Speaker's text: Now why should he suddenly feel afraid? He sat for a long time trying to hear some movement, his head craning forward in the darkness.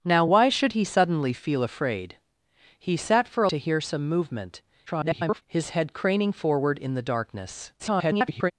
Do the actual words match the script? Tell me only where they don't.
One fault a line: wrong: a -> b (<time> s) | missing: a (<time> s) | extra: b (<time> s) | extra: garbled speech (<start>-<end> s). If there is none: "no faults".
missing: long time trying (3.5 s)
extra: garbled speech (4.9-5.4 s)
extra: garbled speech (7.8-8.5 s)